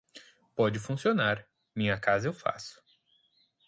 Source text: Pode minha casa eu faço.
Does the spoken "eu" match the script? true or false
true